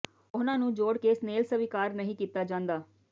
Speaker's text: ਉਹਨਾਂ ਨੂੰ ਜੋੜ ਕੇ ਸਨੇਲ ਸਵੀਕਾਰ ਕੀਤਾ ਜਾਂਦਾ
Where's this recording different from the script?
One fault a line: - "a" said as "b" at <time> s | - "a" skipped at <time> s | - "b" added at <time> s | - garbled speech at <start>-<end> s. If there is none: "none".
- "ਨਹੀਂ" added at 1.9 s